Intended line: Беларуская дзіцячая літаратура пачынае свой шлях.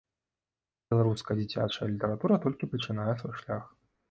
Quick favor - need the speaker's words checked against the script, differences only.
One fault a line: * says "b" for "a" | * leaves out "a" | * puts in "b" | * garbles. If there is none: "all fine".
* puts in "толькі"